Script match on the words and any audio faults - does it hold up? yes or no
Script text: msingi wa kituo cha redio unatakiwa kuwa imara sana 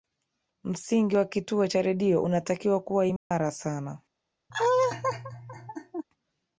no